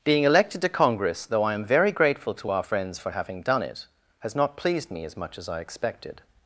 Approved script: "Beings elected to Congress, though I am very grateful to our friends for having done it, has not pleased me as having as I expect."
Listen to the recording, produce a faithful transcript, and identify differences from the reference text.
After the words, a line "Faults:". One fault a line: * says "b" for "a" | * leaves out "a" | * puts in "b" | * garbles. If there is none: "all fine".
"Being elected to Congress, though I am very grateful to our friends for having done it, has not pleased me as much as I expected."
Faults:
* says "Being" for "Beings"
* says "much" for "having"
* says "expected" for "expect"